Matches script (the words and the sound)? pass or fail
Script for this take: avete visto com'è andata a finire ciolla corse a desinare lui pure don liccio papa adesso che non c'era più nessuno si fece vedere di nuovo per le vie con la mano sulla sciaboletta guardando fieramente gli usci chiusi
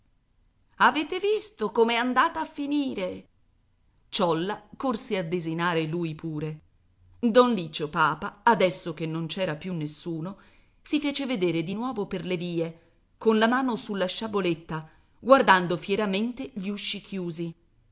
pass